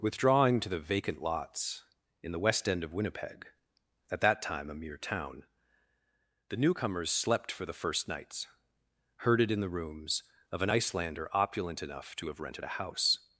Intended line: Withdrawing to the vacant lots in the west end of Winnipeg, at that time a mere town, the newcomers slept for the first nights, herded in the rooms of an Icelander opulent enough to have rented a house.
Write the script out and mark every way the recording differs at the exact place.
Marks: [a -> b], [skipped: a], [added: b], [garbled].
Withdrawing to the vacant lots in the west end of Winnipeg, at that time a mere town, the newcomers slept for the first nights, herded in the rooms of an Icelander opulent enough to have rented a house.